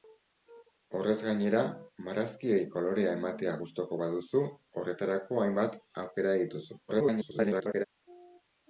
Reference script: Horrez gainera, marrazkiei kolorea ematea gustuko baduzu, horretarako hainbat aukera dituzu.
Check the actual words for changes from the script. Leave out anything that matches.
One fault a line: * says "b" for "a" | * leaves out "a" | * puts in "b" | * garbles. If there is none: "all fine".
* garbles